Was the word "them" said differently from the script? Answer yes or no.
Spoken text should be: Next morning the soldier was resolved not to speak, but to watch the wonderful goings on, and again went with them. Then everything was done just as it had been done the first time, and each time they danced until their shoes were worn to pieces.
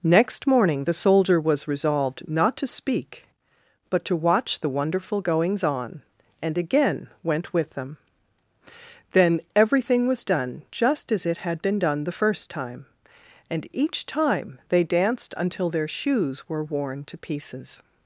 no